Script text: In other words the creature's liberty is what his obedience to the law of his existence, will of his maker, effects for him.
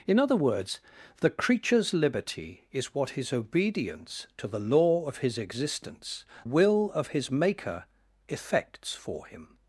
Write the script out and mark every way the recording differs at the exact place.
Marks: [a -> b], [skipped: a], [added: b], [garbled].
In other words the creature's liberty is what his obedience to the law of his existence, will of his maker, effects for him.